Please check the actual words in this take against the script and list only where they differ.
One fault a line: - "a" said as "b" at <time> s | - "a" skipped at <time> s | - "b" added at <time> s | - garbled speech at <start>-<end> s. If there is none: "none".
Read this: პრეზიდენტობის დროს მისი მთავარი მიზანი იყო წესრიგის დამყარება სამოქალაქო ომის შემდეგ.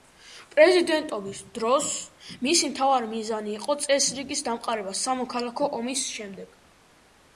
none